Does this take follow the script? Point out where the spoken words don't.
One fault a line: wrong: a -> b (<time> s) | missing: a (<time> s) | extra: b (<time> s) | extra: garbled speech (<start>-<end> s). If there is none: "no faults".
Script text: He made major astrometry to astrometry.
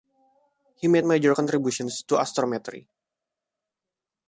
wrong: astrometry -> contributions (1.3 s)